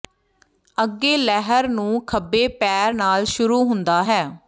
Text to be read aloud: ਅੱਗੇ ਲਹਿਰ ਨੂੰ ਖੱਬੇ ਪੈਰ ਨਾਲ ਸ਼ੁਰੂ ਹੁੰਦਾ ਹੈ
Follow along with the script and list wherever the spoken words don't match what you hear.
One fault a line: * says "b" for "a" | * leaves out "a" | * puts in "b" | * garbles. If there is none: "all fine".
all fine